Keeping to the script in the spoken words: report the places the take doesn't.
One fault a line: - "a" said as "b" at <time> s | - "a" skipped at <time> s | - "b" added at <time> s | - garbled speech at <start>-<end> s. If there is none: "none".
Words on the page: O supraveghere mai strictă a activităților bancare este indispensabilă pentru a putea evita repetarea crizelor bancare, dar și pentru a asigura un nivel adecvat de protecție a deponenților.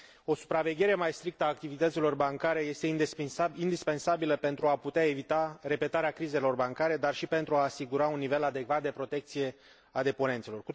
none